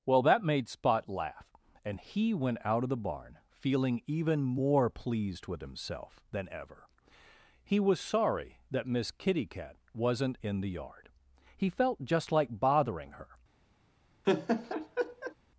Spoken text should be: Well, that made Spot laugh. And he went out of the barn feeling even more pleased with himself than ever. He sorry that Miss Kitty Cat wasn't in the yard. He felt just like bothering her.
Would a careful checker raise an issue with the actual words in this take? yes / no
yes